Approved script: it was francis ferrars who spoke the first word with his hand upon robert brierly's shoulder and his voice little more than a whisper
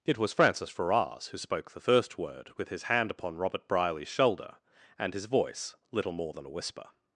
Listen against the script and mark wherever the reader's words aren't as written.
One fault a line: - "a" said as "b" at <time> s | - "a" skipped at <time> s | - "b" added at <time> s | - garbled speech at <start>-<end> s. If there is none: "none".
none